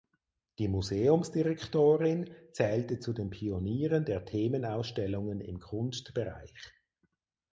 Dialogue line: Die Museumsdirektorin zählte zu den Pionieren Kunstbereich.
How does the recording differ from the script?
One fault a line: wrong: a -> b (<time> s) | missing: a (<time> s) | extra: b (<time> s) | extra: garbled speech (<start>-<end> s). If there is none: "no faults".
extra: der Themenausstellungen im (4.0 s)